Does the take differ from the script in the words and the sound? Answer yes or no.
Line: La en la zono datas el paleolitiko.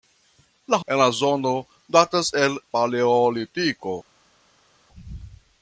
no